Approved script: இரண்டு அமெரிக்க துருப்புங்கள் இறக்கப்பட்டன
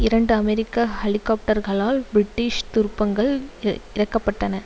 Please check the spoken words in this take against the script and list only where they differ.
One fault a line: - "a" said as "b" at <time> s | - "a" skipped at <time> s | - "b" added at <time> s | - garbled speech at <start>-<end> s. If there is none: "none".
- "ஹெலிகாப்டர்களால் பிரிட்டிஷ்" added at 1.0 s